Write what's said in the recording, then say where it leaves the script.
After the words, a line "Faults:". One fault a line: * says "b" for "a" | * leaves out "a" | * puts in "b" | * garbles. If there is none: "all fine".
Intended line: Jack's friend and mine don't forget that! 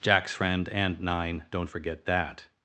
Jack's friend and nine don't forget that!
Faults:
* says "nine" for "mine"